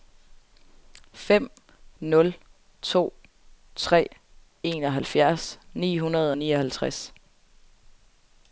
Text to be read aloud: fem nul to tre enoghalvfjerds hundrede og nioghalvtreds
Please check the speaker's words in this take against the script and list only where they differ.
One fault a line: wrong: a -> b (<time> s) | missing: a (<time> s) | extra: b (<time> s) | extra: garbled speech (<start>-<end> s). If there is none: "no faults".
extra: ni (5.7 s)